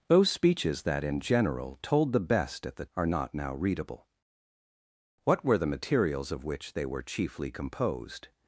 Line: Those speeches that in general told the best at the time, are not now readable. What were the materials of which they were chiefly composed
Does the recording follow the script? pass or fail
fail